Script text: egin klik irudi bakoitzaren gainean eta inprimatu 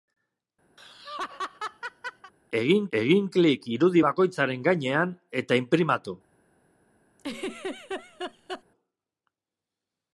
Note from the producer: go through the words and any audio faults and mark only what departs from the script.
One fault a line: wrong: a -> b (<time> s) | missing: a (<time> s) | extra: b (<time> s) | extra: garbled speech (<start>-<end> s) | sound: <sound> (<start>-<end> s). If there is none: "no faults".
sound: laugh (0.8-2.3 s)
extra: egin (3.0 s)
sound: laugh (7.2-8.6 s)